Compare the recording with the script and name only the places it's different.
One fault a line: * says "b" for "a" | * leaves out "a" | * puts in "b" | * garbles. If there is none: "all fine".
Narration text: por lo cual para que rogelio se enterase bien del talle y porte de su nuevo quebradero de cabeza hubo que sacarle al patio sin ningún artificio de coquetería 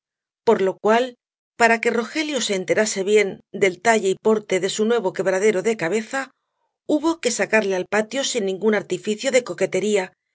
all fine